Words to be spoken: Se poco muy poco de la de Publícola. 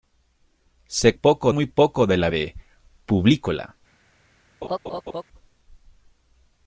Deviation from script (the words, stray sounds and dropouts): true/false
true